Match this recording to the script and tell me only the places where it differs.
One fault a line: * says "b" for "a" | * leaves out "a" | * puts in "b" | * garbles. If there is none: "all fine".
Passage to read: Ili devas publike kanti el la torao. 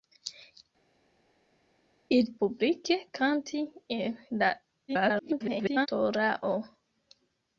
* leaves out "devas"
* garbles